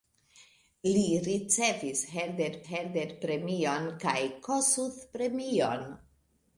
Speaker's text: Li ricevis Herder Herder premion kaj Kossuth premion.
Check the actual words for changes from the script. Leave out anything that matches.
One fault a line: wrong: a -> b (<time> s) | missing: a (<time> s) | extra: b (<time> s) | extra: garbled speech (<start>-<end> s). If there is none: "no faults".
no faults